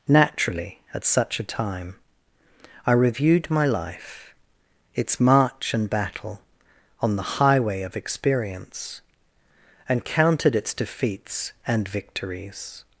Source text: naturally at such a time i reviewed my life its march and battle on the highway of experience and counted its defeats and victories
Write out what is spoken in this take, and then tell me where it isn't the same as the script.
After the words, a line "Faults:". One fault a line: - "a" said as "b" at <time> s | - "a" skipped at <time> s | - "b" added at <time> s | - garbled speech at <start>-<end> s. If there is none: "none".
naturally at such a time i reviewed my life its march and battle on the highway of experience and counted its defeats and victories
Faults:
none